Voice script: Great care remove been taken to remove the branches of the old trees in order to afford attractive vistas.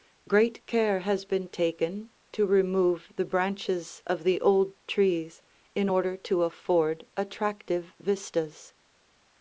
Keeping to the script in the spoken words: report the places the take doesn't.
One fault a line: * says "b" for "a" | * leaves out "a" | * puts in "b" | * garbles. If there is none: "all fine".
* says "has" for "remove"